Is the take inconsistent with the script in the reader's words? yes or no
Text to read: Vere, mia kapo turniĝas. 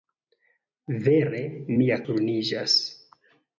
yes